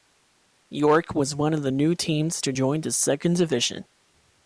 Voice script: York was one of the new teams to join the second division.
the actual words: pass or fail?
pass